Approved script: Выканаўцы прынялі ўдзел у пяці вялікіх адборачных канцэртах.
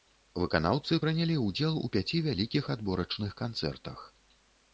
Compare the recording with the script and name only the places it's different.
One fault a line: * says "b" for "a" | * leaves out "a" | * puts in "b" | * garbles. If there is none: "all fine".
all fine